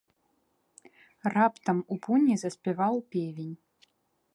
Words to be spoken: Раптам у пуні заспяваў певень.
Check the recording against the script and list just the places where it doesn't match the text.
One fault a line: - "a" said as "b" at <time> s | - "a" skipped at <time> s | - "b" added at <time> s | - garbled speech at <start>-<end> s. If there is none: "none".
none